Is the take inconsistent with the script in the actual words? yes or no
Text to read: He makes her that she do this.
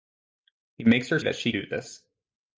no